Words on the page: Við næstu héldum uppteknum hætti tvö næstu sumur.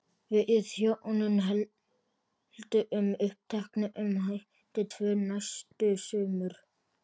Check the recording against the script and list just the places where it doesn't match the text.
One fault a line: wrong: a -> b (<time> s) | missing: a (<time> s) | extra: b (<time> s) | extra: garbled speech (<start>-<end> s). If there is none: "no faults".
wrong: næstu -> hjónin (0.8 s)